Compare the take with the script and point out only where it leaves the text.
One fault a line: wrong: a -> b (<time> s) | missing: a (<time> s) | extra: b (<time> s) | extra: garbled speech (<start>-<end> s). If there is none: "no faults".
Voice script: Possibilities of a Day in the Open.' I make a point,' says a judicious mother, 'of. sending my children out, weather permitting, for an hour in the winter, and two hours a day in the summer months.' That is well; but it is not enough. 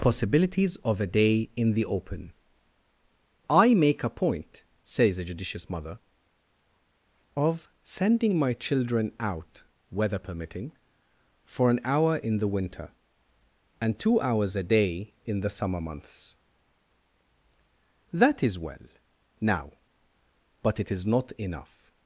extra: now (19.4 s)